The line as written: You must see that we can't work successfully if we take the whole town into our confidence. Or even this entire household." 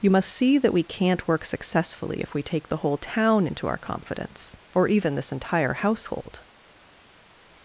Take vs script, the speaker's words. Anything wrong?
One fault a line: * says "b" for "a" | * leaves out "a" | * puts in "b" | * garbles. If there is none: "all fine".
all fine